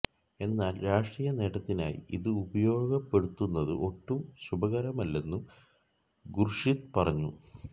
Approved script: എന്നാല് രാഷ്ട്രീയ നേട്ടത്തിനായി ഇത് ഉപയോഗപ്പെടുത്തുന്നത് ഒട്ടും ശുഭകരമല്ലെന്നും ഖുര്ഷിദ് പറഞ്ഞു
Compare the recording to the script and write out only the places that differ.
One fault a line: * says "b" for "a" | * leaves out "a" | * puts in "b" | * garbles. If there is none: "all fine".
all fine